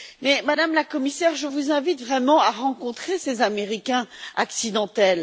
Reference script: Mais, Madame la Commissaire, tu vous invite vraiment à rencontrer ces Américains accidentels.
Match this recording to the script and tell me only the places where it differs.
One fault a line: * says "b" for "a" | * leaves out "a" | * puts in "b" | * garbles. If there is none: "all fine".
* says "je" for "tu"